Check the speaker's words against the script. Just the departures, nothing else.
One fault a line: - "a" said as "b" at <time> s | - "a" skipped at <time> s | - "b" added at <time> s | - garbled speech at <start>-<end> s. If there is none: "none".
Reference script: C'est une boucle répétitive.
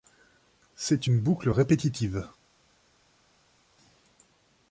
none